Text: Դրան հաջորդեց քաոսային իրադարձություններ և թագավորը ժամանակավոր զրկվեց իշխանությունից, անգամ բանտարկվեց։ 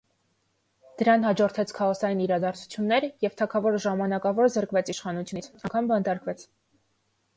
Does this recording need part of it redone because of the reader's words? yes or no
no